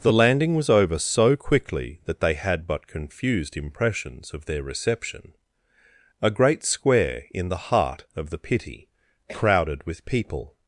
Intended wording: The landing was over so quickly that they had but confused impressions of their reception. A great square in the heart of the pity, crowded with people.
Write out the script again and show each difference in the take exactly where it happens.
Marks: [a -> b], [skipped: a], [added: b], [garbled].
The landing was over so quickly that they had but confused impressions of their reception. A great square in the heart of the pity, crowded with people.